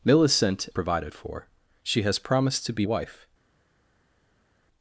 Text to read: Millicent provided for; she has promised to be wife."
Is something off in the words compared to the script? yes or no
no